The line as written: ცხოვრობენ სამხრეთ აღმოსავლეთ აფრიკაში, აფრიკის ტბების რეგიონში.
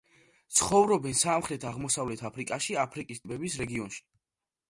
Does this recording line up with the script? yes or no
yes